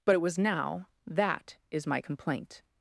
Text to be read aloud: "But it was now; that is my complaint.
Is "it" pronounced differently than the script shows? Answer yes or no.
no